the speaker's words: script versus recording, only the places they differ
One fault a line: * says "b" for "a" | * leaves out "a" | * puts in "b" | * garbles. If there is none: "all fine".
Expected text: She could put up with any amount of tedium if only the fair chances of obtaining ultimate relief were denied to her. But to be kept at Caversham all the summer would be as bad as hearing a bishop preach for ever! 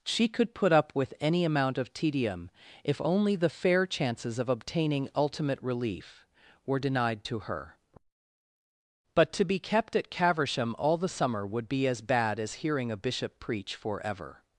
all fine